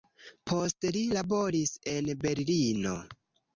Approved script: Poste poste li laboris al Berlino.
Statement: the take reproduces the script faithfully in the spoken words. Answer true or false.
false